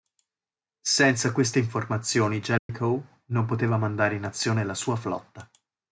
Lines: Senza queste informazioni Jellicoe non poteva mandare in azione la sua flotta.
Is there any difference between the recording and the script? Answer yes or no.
no